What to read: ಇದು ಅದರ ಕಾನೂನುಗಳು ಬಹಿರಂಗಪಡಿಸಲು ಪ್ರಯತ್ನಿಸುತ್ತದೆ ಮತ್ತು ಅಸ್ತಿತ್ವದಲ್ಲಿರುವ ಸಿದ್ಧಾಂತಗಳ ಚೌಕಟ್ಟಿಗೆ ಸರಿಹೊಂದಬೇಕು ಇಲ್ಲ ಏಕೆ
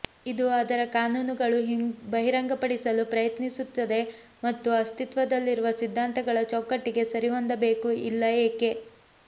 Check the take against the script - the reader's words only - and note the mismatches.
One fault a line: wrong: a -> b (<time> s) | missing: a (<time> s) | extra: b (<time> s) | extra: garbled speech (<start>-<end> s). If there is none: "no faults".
no faults